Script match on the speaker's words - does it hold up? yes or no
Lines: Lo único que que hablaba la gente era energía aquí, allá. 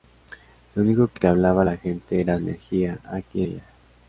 yes